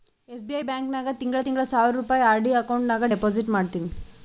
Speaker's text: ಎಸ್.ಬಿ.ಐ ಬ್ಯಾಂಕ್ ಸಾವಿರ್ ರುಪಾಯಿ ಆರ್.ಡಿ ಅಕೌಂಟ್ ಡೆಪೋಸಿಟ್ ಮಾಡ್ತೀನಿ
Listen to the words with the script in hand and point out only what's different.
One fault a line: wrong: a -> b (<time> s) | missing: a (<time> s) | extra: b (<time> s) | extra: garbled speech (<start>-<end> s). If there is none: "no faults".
extra: ನಾಗ್ ತಿಂಗಳಾ ತಿಂಗಳಾ (0.9 s)
extra: ನಾಗ್ (2.9 s)